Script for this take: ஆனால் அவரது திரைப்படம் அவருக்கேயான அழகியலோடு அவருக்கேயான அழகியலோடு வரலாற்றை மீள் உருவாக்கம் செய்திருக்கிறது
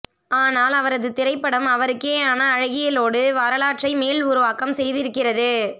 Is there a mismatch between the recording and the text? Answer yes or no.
yes